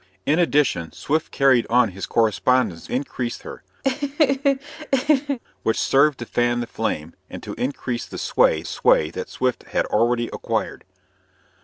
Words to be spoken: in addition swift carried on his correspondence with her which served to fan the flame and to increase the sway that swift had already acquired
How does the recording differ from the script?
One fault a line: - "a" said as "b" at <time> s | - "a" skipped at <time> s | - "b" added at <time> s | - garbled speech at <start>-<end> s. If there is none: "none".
- "with" said as "increase" at 2.9 s
- "sway" added at 8.6 s